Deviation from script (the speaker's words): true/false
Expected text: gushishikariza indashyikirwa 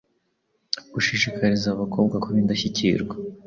true